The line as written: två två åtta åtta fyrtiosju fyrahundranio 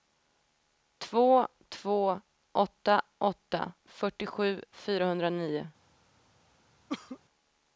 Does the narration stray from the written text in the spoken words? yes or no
no